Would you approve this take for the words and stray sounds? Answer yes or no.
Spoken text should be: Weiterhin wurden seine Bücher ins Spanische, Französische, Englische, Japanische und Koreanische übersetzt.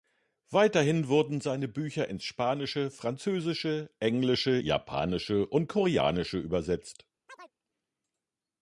no